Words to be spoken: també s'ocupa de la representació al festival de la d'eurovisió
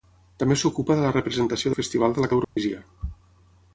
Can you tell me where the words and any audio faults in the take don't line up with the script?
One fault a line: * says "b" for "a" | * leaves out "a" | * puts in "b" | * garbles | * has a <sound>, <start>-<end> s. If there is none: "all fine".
* has a dropout, 2.4-2.6 s